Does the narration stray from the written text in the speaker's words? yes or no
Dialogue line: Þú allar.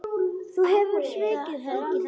yes